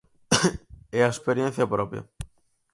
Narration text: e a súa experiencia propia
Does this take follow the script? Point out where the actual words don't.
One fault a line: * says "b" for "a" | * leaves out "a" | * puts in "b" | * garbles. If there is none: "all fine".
* leaves out "súa"